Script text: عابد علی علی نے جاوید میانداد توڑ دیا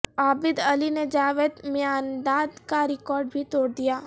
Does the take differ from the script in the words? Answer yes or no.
yes